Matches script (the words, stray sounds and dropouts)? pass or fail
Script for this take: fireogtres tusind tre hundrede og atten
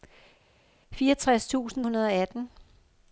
fail